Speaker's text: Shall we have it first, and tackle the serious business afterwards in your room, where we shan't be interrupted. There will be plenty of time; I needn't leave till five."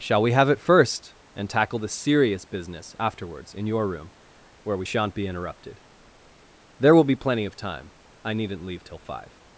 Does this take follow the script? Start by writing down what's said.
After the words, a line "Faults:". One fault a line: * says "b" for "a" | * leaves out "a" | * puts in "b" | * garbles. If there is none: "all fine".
Shall we have it first, and tackle the serious business afterwards in your room, where we shan't be interrupted. There will be plenty of time; I needn't leave till five."
Faults:
all fine